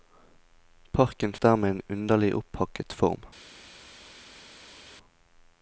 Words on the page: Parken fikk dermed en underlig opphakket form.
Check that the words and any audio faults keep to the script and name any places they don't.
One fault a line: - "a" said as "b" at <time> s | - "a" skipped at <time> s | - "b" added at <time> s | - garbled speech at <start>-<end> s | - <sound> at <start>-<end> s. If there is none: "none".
- "fikk" skipped at 1.3 s